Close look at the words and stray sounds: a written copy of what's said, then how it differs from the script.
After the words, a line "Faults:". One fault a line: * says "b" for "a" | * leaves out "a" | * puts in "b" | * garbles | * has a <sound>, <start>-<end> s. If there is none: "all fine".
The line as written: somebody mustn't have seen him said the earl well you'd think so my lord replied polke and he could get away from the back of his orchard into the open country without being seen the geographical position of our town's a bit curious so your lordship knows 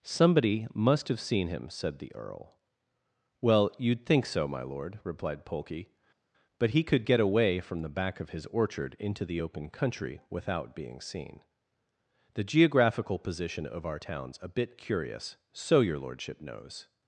somebody must have seen him said the earl well you'd think so my lord replied polke but he could get away from the back of his orchard into the open country without being seen the geographical position of our town's a bit curious so your lordship knows
Faults:
* says "must" for "mustn't"
* says "but" for "and"